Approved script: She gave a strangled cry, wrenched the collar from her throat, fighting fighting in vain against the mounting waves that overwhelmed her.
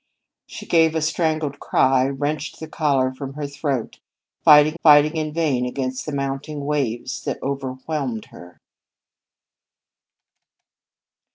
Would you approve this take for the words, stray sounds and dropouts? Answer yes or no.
yes